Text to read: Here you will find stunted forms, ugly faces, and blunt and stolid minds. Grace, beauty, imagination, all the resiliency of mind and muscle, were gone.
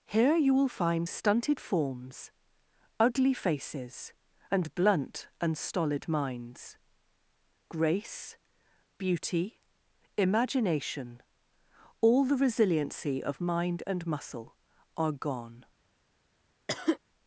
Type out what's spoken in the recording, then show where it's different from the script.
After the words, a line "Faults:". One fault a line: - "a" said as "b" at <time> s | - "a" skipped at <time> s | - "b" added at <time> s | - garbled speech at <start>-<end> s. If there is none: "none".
Here you will find stunted forms, ugly faces, and blunt and stolid minds. Grace, beauty, imagination, all the resiliency of mind and muscle, are gone.
Faults:
- "were" said as "are" at 15.0 s